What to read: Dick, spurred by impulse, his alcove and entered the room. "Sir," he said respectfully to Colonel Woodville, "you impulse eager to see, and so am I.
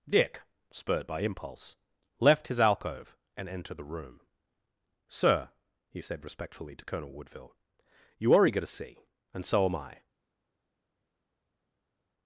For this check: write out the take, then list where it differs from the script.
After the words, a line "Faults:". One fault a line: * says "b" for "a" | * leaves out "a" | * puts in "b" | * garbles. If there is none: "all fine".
Dick, spurred by impulse, left his alcove and entered the room. "Sir," he said respectfully to Colonel Woodville, "you are eager to see, and so am I.
Faults:
* puts in "left"
* says "are" for "impulse"